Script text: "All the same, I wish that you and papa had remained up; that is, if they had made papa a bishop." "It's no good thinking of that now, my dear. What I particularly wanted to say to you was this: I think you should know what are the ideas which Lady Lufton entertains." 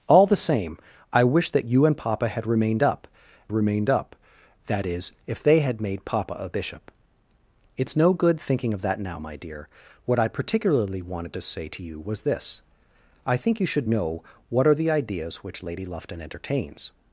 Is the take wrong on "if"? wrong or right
right